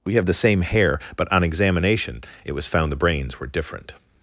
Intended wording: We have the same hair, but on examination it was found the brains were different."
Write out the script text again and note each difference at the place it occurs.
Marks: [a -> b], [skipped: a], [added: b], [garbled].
We have the same hair, but on examination it was found the brains were different."